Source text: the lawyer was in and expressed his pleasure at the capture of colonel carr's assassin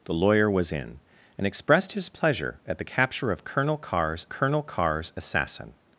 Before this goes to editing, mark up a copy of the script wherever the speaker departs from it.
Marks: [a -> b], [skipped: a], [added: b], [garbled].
the lawyer was in and expressed his pleasure at the capture of colonel carr's [added: colonel carr's] assassin